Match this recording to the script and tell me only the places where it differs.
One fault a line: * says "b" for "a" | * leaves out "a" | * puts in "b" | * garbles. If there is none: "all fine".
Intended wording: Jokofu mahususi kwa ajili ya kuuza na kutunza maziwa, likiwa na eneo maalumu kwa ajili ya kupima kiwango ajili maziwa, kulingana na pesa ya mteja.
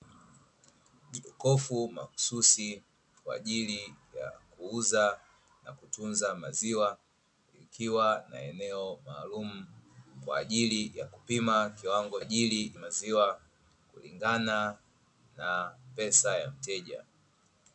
all fine